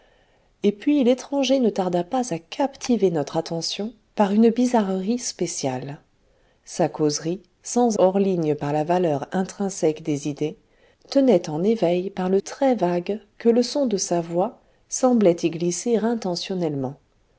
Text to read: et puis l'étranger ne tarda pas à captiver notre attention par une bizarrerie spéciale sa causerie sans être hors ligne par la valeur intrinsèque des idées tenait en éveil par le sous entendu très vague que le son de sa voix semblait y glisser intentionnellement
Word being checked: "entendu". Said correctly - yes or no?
no